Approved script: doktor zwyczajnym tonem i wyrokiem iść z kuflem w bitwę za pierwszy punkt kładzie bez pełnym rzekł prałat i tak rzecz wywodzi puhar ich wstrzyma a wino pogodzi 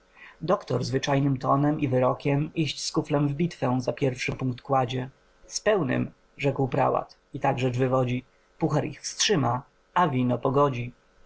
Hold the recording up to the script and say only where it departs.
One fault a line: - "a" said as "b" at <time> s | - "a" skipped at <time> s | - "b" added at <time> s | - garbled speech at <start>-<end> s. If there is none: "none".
- "bez" said as "z" at 5.5 s